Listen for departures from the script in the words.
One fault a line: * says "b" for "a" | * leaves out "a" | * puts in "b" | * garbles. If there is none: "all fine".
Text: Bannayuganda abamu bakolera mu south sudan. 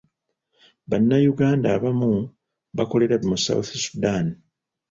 all fine